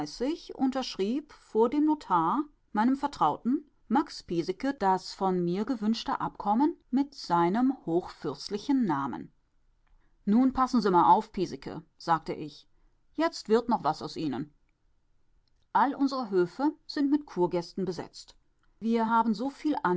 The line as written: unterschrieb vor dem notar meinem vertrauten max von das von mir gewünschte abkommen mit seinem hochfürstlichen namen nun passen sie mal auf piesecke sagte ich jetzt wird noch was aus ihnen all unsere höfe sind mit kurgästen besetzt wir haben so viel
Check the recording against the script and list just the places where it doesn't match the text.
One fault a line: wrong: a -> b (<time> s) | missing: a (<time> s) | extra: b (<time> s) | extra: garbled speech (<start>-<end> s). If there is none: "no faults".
wrong: von -> piesecke (4.2 s)